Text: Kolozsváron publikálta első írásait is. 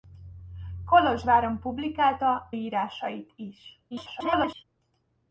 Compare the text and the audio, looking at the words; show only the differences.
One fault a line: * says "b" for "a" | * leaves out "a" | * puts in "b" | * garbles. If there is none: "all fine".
* leaves out "első"
* garbles